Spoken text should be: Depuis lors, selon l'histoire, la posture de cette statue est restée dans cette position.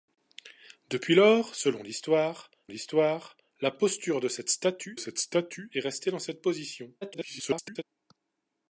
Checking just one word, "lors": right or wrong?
right